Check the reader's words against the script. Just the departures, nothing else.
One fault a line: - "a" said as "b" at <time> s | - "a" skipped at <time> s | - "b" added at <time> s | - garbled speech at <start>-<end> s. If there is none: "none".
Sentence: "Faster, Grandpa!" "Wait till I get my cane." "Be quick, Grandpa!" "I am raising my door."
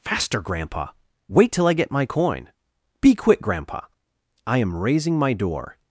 - "cane" said as "coin" at 2.1 s